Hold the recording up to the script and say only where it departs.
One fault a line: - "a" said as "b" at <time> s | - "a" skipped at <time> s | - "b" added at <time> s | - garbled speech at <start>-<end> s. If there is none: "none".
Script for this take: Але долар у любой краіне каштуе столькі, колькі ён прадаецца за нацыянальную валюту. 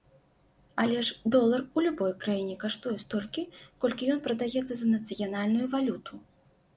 - "ж" added at 1.1 s